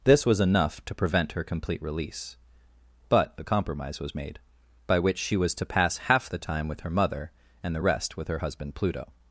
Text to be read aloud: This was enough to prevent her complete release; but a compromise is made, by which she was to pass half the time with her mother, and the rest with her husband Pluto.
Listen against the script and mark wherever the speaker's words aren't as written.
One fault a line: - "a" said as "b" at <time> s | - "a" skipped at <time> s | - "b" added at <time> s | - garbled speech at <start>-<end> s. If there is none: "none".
- "is" said as "was" at 4.0 s